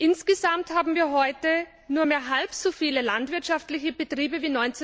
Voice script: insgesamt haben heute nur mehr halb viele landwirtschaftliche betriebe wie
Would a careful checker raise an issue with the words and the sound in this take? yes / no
yes